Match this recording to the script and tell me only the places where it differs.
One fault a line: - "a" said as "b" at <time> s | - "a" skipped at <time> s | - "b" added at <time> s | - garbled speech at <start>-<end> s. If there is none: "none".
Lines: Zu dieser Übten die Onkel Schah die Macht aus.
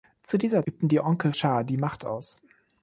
none